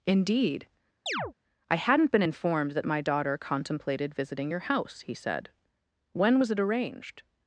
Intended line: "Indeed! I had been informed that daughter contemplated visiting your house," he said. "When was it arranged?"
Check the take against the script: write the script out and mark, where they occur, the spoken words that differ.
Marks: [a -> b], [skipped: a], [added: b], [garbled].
"Indeed! I [had -> hadn't] been informed that [added: my] daughter contemplated visiting your house," he said. "When was it arranged?"